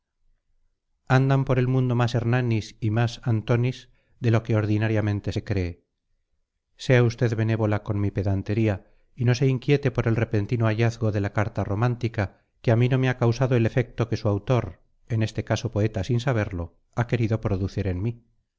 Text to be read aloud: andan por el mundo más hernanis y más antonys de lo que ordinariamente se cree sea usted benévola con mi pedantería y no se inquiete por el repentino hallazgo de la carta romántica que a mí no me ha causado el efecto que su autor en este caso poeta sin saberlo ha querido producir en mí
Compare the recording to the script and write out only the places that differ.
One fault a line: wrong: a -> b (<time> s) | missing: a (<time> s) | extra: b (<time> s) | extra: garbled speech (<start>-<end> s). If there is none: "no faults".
no faults